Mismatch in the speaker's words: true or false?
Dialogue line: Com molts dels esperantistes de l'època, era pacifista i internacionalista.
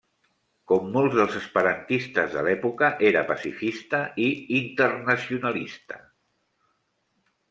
false